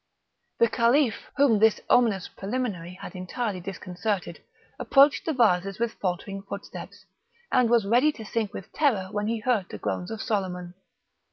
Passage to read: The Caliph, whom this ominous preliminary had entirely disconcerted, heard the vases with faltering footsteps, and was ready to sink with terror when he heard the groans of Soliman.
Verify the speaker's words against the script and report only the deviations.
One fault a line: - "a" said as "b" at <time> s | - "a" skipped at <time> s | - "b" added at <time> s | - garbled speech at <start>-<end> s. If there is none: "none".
- "heard" said as "approached" at 4.8 s